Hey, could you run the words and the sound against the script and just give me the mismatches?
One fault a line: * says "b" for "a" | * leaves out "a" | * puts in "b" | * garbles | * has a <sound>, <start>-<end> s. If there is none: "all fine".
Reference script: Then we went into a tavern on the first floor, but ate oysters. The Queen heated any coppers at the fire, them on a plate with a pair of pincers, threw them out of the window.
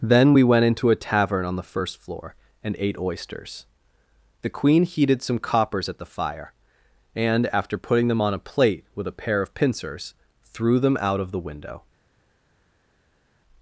* says "and" for "but"
* says "some" for "any"
* puts in "and after putting"